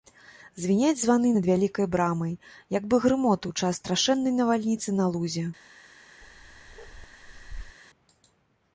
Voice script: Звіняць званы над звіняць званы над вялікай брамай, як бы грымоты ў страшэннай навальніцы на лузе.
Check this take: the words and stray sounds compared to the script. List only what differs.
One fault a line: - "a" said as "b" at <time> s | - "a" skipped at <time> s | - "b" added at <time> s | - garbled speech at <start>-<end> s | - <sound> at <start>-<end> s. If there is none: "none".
- "звіняць званы над" skipped at 1.5 s
- "час" added at 3.6 s
- bark at 6.2-7.8 s